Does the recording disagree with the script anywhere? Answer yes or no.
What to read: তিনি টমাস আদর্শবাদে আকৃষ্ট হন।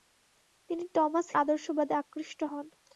no